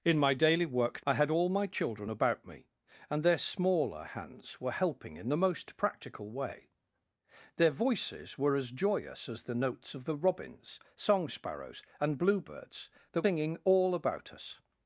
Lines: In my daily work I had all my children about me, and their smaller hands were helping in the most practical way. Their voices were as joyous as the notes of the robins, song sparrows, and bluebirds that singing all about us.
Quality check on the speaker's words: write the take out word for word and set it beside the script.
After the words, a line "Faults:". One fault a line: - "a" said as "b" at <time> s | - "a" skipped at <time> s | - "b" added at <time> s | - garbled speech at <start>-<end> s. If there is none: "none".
In my daily work I had all my children about me, and their smaller hands were helping in the most practical way. Their voices were as joyous as the notes of the robins, song sparrows, and bluebirds that singing all about us.
Faults:
none